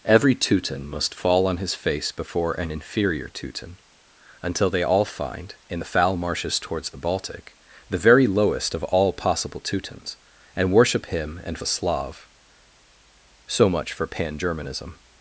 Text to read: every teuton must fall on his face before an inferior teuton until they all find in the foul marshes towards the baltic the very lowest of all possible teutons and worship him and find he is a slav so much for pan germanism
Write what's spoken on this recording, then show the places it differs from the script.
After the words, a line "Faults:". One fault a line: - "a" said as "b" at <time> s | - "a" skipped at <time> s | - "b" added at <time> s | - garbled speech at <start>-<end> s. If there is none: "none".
every teuton must fall on his face before an inferior teuton until they all find in the foul marshes towards the baltic the very lowest of all possible teutons and worship him and a slav so much for pan germanism
Faults:
- "find he is" skipped at 11.6 s